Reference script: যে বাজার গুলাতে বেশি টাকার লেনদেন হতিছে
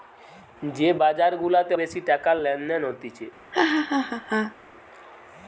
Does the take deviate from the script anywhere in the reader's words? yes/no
no